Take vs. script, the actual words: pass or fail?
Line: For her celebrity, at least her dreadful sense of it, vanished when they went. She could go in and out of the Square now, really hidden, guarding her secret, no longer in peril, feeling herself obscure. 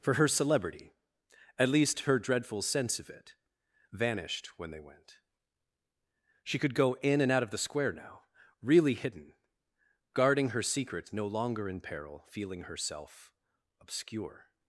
pass